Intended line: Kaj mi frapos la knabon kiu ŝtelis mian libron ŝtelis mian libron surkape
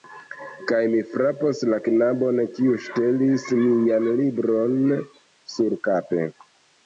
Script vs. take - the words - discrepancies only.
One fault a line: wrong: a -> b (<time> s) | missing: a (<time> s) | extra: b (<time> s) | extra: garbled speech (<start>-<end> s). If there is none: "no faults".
missing: ŝtelis mian libron (4.8 s)